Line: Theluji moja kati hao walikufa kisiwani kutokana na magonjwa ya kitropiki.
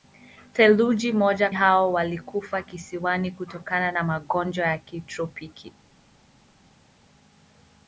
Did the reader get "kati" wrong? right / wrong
wrong